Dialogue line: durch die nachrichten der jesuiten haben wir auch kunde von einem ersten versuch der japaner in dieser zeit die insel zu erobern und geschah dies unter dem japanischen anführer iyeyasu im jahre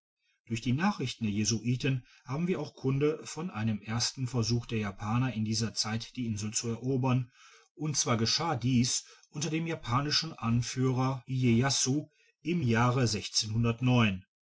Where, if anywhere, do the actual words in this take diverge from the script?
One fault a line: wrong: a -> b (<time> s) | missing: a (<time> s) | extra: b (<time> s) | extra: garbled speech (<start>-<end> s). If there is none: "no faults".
extra: zwar (8.0 s)